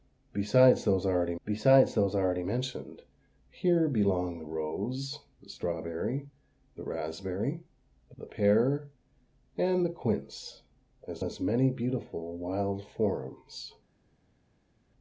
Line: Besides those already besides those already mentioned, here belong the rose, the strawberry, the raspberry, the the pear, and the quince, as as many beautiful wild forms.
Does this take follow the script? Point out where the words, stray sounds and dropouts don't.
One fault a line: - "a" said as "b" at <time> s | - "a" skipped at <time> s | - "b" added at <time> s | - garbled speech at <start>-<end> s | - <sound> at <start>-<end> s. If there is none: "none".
none